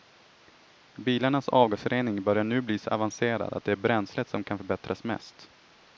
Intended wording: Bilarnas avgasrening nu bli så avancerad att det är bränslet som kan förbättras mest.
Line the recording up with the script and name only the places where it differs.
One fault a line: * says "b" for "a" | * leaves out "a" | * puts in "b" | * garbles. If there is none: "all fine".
* puts in "börjar"